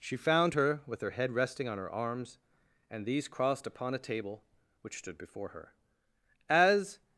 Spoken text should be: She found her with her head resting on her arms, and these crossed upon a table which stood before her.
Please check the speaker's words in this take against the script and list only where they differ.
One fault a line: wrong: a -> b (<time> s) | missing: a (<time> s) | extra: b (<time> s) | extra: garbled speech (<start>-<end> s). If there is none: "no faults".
extra: As (6.5 s)